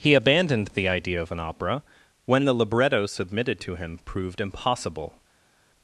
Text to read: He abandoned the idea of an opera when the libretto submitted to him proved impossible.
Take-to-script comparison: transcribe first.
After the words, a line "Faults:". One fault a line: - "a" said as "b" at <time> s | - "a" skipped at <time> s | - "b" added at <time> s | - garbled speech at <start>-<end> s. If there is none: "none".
He abandoned the idea of an opera when the libretto submitted to him proved impossible.
Faults:
none